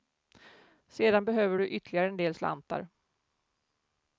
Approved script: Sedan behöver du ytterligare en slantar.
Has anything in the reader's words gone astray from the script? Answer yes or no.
yes